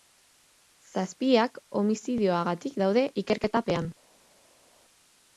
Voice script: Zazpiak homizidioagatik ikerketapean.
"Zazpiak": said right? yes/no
yes